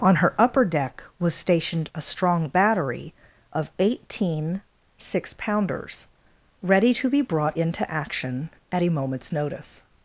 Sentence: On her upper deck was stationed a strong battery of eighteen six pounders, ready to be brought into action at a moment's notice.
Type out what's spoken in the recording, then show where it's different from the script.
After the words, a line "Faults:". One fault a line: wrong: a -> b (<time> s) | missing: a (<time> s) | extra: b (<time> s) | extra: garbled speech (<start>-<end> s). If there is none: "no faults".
On her upper deck was stationed a strong battery of eighteen six pounders, ready to be brought into action at a moment's notice.
Faults:
no faults